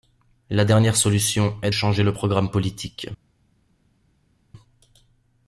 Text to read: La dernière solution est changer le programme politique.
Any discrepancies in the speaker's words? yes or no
no